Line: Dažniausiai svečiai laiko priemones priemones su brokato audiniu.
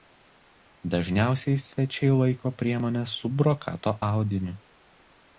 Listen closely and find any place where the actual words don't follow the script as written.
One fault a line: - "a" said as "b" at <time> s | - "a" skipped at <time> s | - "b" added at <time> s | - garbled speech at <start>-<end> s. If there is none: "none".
- "priemones" skipped at 3.1 s